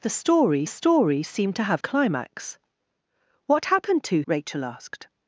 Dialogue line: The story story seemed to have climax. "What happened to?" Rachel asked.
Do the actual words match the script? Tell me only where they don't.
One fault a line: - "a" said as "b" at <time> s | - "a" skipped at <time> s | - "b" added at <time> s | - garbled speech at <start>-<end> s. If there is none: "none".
none